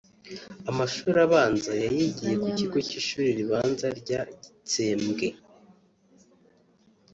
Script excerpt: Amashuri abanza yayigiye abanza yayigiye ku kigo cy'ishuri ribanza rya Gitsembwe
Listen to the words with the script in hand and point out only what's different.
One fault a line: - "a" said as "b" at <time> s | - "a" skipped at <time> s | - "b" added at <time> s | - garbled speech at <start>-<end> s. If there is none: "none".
- "abanza yayigiye" skipped at 2.3 s